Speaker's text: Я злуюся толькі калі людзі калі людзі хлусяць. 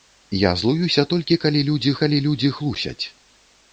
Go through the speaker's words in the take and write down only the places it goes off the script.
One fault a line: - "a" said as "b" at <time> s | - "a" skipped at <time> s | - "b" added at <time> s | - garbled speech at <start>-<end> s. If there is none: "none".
none